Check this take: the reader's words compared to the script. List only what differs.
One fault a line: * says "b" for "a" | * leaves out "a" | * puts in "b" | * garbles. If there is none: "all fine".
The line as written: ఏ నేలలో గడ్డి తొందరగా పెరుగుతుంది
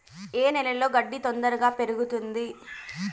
all fine